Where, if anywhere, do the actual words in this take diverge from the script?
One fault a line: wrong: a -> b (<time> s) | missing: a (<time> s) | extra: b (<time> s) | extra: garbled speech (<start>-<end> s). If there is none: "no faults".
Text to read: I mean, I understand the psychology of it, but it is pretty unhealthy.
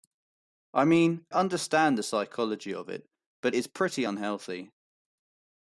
missing: I (1.3 s)
missing: it (3.5 s)